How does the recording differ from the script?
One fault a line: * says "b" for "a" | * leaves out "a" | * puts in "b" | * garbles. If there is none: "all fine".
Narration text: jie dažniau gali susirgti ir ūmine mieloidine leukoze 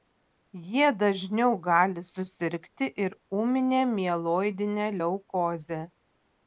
all fine